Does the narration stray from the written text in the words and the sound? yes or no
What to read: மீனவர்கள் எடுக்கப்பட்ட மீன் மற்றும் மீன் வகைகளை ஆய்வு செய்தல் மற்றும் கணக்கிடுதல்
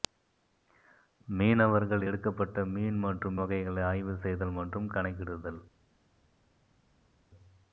yes